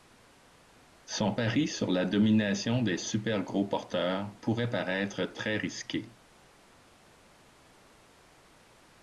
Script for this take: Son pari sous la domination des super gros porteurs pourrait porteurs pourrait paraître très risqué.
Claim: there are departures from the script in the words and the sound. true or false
true